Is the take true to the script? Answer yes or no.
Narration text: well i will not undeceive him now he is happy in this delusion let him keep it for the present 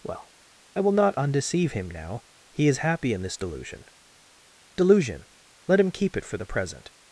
no